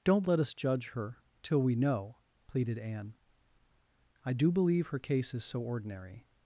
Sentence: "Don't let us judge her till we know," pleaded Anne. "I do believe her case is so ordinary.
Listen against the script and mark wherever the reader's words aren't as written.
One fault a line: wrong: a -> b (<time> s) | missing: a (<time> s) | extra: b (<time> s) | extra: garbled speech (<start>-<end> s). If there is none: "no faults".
no faults